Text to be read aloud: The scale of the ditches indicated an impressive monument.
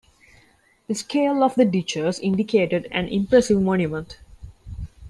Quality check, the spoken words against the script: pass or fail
pass